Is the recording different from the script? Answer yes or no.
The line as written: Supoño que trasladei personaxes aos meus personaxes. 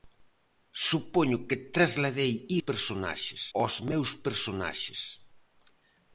no